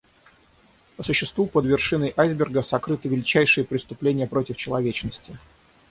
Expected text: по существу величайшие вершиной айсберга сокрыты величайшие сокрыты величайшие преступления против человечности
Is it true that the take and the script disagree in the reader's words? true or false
true